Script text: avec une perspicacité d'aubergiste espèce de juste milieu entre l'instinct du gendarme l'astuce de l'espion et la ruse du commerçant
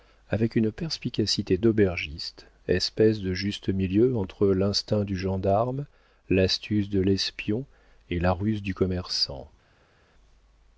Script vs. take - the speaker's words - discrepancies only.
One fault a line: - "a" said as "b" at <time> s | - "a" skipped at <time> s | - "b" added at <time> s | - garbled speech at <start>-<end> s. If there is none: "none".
none